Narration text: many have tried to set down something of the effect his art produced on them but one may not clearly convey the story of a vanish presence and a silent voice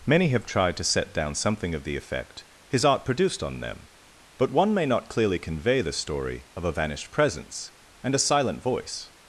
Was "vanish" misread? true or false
true